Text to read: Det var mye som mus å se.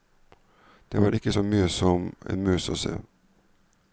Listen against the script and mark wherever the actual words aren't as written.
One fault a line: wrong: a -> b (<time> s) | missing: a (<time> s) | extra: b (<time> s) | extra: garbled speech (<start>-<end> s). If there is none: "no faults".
extra: ikke så (1.1 s)
extra: en (2.3 s)